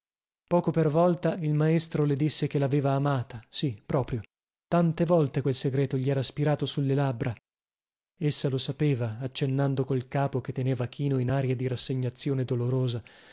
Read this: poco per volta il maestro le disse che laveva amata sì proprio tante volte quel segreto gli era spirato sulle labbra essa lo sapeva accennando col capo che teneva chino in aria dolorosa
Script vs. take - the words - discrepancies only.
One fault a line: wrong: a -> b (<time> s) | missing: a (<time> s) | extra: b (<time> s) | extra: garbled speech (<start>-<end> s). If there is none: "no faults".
extra: di rassegnazione (11.5 s)